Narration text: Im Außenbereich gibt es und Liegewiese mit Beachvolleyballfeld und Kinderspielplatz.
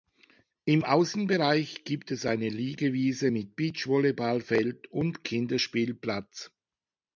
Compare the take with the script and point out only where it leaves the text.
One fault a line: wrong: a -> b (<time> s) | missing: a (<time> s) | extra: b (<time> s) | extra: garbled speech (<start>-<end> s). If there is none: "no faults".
wrong: und -> eine (2.2 s)